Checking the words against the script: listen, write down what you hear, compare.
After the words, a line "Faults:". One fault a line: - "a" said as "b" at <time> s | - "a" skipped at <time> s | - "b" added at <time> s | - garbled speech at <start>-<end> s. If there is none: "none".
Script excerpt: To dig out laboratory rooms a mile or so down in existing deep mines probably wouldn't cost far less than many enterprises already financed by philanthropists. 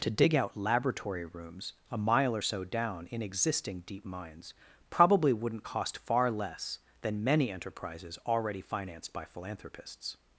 To dig out laboratory rooms a mile or so down in existing deep mines probably wouldn't cost far less than many enterprises already financed by philanthropists.
Faults:
none